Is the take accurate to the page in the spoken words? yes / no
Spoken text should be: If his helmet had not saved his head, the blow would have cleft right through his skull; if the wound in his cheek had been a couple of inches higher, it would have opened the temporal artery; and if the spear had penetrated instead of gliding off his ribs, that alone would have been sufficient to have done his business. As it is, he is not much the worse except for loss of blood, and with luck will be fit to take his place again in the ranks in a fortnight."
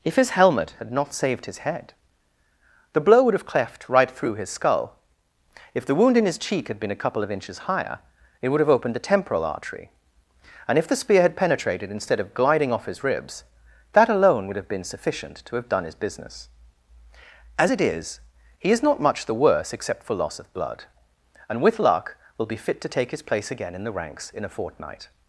yes